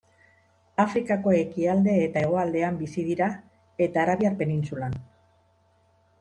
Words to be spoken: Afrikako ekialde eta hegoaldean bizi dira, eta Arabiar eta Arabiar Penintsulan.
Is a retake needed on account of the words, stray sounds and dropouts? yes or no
yes